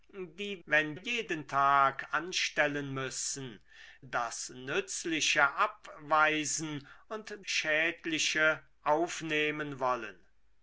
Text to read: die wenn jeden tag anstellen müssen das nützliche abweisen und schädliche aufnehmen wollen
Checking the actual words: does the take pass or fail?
pass